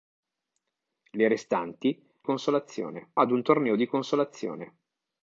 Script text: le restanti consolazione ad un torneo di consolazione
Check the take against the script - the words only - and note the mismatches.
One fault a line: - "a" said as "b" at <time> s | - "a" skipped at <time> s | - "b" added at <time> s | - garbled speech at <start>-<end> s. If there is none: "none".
none